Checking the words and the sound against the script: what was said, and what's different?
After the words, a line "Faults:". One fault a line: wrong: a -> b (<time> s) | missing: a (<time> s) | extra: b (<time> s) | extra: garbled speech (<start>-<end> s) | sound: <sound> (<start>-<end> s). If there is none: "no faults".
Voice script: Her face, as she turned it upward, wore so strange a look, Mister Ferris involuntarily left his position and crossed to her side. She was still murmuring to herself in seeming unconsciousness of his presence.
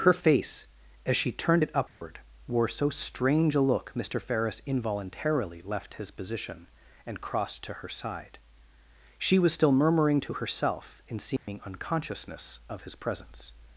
Her face, as she turned it upward, wore so strange a look, Mister Ferris involuntarily left his position and crossed to her side. She was still murmuring to herself in seeming unconsciousness of his presence.
Faults:
sound: dropout (1.9-2.0 s)
sound: dropout (11.4-11.5 s)